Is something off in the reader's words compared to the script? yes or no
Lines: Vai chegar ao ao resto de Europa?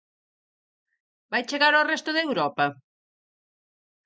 yes